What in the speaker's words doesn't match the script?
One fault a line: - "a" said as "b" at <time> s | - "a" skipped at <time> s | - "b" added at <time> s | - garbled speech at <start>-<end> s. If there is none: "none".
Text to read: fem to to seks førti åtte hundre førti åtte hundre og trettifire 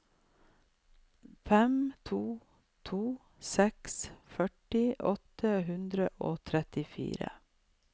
- "førti åtte hundre" skipped at 6.1 s